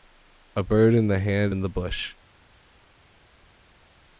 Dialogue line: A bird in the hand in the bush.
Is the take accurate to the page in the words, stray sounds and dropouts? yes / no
yes